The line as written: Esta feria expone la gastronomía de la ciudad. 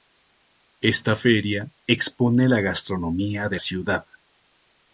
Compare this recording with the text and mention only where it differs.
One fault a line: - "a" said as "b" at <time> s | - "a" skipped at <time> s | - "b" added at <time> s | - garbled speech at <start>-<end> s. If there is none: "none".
- "la" skipped at 3.6 s